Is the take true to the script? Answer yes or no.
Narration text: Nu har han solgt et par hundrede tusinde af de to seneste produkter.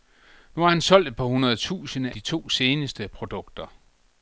no